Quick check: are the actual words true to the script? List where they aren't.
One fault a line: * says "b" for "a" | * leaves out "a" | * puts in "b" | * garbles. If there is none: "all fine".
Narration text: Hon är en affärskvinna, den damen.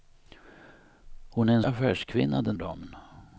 all fine